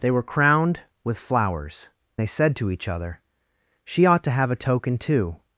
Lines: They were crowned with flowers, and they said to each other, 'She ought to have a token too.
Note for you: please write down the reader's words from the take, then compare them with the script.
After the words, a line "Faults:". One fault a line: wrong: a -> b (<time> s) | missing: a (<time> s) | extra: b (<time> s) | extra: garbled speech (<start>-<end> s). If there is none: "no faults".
They were crowned with flowers, they said to each other, 'She ought to have a token too.
Faults:
missing: and (1.9 s)